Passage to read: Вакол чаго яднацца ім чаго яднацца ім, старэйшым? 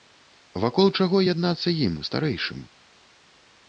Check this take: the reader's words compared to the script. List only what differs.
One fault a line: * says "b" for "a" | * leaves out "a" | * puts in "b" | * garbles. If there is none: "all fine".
* leaves out "чаго яднацца ім"